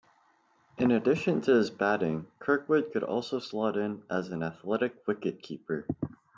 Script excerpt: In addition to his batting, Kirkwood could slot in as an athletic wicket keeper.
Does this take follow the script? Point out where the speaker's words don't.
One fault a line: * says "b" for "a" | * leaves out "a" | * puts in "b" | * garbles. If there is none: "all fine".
* puts in "also"